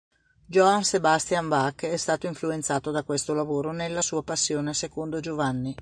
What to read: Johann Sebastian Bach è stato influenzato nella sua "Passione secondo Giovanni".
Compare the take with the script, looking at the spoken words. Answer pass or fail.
fail